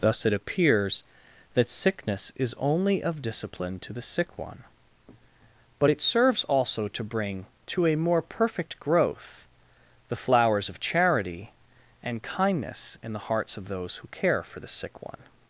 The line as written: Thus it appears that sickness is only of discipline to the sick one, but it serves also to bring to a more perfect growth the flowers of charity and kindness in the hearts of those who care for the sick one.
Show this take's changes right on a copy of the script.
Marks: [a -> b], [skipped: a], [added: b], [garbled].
Thus it appears that sickness is only of discipline to the sick one, but it serves also to bring to a more perfect growth the flowers of charity and kindness in the hearts of those who care for the sick one.